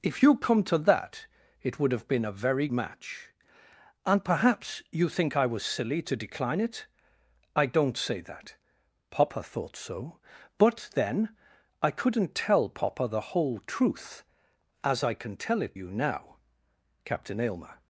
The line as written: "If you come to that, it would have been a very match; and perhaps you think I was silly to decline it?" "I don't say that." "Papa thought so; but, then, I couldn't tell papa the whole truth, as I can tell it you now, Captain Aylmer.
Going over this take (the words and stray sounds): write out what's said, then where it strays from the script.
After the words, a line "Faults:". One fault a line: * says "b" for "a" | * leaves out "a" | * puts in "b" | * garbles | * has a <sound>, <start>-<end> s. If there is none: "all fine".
"If you come to that, it would have been a very match; and perhaps you think I was silly to decline it?" "I don't say that." "Papa thought so; but, then, I couldn't tell papa the whole truth, as I can tell it you now, Captain Aylmer.
Faults:
all fine